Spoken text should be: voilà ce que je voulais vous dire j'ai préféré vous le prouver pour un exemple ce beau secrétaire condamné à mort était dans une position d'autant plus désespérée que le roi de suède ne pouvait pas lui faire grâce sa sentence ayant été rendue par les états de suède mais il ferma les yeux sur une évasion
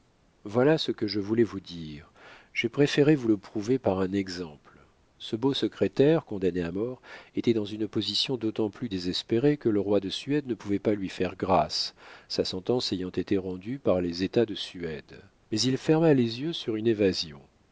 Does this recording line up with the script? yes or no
no